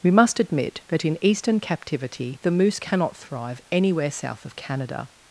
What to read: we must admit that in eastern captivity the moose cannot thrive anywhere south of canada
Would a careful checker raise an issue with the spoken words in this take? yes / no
no